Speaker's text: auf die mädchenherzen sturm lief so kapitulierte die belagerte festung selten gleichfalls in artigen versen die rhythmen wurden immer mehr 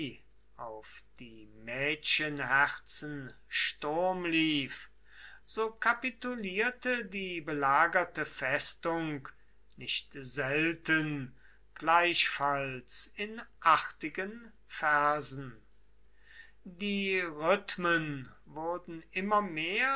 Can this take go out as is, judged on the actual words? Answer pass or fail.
fail